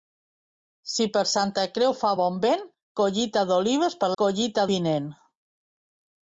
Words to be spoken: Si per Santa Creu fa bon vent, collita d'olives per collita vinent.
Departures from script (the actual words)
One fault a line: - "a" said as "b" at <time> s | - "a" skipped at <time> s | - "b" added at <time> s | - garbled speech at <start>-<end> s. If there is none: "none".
none